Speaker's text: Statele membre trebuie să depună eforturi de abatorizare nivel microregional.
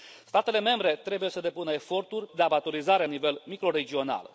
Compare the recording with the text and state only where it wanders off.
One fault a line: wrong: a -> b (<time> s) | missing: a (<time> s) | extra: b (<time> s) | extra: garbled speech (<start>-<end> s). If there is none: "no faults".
no faults